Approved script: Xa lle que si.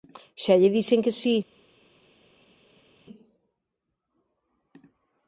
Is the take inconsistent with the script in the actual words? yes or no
yes